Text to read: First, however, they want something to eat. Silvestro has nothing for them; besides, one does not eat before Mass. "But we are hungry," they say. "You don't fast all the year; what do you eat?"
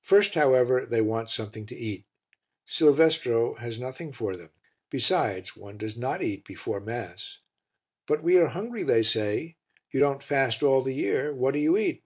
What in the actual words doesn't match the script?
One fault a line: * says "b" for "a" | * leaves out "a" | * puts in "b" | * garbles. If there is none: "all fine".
all fine